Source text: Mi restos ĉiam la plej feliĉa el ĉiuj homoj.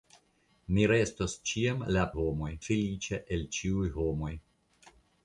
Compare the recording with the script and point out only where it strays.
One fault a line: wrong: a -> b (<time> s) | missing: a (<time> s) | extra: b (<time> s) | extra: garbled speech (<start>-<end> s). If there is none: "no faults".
wrong: plej -> homoj (2.2 s)